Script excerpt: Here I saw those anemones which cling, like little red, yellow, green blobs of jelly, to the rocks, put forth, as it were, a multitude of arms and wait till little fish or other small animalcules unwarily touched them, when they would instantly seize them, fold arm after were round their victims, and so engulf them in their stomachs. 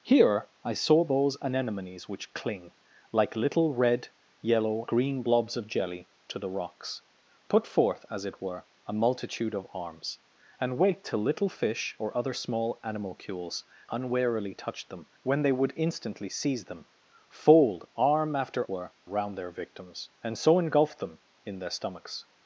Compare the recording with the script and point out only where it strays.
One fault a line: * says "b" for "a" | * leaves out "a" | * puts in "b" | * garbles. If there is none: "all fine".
all fine